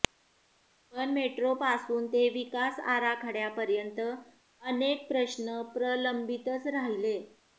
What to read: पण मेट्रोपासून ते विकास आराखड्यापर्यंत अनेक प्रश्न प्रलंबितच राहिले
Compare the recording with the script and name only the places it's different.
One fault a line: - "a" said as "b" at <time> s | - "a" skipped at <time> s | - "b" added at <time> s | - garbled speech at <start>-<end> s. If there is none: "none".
none